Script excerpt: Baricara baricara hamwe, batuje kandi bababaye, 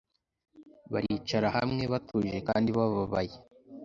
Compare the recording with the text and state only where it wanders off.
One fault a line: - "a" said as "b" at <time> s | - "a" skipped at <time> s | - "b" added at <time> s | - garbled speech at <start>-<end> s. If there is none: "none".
- "baricara" skipped at 1.5 s